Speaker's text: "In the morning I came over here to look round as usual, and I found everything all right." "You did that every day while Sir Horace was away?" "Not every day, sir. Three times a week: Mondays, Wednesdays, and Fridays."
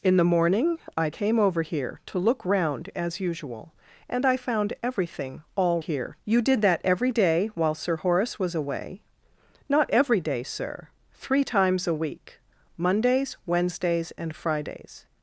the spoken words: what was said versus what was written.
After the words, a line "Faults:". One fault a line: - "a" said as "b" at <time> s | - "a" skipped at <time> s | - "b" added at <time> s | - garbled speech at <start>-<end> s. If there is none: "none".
"In the morning I came over here to look round as usual, and I found everything all here." "You did that every day while Sir Horace was away?" "Not every day, sir. Three times a week: Mondays, Wednesdays, and Fridays."
Faults:
- "right" said as "here" at 5.8 s